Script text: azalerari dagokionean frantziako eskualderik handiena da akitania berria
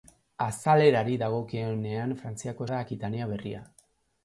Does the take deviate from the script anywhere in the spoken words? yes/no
yes